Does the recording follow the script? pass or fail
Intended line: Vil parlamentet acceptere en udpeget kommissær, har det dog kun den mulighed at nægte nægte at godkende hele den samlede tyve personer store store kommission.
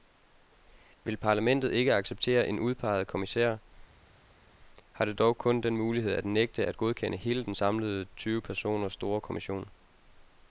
fail